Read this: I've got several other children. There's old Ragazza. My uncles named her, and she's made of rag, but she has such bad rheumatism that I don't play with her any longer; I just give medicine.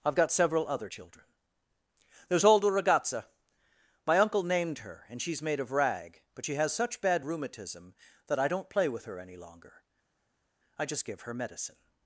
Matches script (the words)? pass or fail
fail